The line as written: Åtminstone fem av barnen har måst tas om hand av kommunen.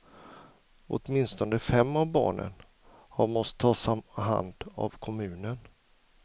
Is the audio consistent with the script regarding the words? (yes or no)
yes